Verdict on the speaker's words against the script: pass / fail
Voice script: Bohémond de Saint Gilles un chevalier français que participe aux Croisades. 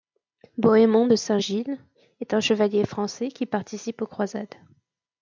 fail